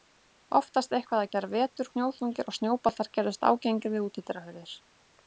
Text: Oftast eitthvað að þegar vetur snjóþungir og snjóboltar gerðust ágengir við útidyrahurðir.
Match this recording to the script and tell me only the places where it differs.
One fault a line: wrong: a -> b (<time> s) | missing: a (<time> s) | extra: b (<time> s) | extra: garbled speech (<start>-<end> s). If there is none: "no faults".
no faults